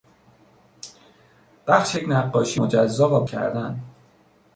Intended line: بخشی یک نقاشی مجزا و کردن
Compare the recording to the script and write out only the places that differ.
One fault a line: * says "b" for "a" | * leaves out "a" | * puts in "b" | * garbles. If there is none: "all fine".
all fine